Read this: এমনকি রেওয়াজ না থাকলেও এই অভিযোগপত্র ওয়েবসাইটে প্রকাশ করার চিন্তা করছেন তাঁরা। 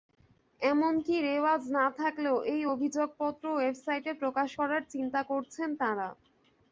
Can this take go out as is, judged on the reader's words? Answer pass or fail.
pass